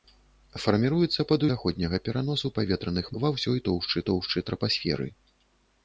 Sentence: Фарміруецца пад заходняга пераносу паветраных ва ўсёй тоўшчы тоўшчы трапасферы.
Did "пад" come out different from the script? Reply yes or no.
no